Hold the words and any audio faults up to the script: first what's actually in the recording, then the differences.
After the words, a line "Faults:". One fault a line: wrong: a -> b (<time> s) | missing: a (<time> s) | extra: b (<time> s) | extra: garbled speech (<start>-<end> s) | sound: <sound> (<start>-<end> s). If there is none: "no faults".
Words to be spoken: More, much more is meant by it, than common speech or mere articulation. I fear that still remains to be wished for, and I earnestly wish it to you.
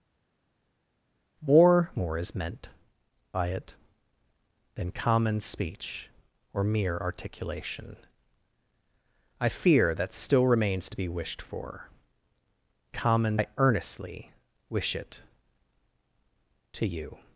More, more is meant by it, than common speech or mere articulation. I fear that still remains to be wished for, common I earnestly wish it to you.
Faults:
missing: much (1.9 s)
wrong: and -> common (12.9 s)